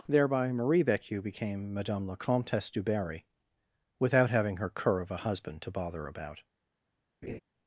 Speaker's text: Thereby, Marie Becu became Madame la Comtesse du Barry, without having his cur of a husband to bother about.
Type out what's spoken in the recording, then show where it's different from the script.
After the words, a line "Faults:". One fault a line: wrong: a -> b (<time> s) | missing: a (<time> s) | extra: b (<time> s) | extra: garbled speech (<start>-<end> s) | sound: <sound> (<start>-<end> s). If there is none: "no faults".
Thereby, Marie Becu became Madame la Comtesse du Barry, without having her cur of a husband to bother about.
Faults:
wrong: his -> her (4.6 s)
sound: laugh (7.2-7.4 s)